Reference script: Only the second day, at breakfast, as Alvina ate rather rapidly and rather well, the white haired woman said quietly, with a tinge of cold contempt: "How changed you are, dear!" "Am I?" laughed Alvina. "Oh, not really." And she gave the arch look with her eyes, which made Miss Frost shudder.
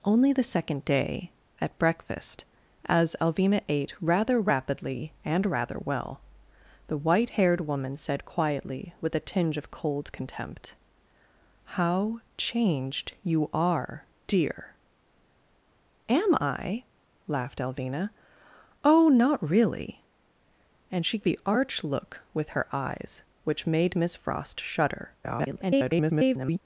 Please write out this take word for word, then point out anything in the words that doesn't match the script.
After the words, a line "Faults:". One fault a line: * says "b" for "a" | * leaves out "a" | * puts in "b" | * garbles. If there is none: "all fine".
Only the second day, at breakfast, as Alvina ate rather rapidly and rather well, the white haired woman said quietly, with a tinge of cold contempt: "How changed you are, dear!" "Am I?" laughed Alvina. "Oh, not really." And she the arch look with her eyes, which made Miss Frost shudder. [garbled]
Faults:
* leaves out "gave"
* garbles